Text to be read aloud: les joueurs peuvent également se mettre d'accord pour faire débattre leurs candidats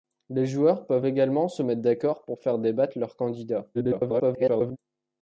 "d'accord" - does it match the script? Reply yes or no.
yes